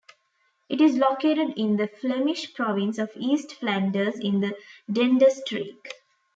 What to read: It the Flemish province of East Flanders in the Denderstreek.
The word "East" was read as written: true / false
true